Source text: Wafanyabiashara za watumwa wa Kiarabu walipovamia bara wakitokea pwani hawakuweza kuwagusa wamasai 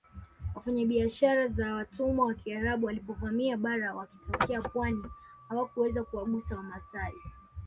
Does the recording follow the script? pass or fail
pass